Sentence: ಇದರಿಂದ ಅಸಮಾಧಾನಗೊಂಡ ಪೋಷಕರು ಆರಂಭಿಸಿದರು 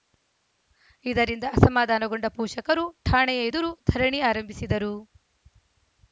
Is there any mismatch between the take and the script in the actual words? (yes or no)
yes